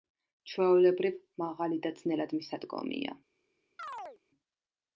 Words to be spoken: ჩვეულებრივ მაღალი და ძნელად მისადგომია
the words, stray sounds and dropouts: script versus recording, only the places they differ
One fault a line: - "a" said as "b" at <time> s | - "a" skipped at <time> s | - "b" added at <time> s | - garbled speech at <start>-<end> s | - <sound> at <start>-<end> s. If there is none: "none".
- chirp at 3.8-4.2 s